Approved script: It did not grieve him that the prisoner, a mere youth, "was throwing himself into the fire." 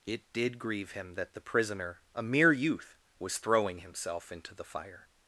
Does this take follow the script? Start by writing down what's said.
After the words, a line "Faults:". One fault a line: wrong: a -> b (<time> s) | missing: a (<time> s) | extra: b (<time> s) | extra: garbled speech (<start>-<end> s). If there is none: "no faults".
It did grieve him that the prisoner, a mere youth, "was throwing himself into the fire."
Faults:
missing: not (0.6 s)